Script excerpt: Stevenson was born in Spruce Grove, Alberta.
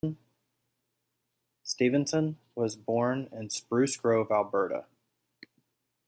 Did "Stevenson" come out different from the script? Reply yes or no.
no